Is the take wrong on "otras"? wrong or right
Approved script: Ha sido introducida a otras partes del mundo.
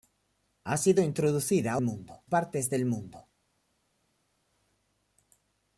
wrong